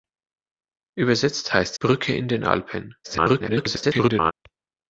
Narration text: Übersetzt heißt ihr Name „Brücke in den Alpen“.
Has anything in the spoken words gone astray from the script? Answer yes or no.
yes